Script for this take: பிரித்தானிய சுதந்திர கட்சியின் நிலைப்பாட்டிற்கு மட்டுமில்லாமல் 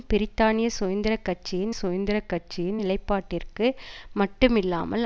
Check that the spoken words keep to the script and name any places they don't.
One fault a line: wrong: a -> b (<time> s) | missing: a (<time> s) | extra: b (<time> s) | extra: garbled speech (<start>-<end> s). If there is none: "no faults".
extra: சுதந்திர கட்சியின் (1.7 s)